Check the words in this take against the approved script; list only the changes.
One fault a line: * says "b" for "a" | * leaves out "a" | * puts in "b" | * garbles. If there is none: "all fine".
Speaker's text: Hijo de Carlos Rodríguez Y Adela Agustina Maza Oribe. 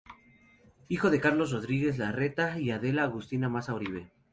* puts in "Larreta"